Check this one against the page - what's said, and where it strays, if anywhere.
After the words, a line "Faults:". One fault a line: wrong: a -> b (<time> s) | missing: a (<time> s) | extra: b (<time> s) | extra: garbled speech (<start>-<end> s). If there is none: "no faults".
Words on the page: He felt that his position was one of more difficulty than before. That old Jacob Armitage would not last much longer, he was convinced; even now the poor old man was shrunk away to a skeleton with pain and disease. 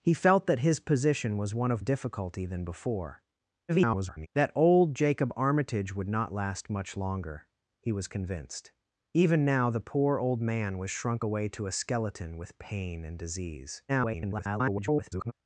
He felt that his position was one of difficulty than before. [garbled] That old Jacob Armitage would not last much longer, he was convinced; even now the poor old man was shrunk away to a skeleton with pain and disease. [garbled]
Faults:
missing: more (1.8 s)
extra: garbled speech (3.7-4.3 s)
extra: garbled speech (13.9-15.3 s)